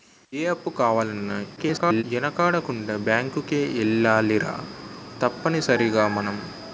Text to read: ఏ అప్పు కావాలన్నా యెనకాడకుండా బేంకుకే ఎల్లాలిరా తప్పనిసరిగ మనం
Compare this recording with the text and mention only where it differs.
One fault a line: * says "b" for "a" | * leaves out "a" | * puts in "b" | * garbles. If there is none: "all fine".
* garbles